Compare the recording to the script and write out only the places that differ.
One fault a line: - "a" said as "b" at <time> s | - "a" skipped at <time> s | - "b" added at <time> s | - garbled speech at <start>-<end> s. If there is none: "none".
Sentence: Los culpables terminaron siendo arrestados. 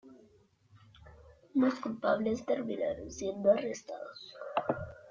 none